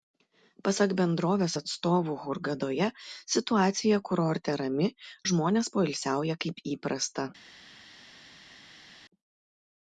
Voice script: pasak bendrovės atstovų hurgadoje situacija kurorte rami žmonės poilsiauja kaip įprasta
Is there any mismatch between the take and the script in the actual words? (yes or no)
no